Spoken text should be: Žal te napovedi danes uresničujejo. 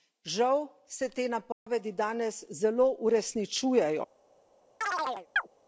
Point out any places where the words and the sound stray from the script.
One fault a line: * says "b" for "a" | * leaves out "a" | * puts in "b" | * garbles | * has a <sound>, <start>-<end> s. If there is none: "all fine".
* puts in "se"
* has a dropout, 1.5-1.7 s
* puts in "zelo"
* has a chirp, 4.8-5.5 s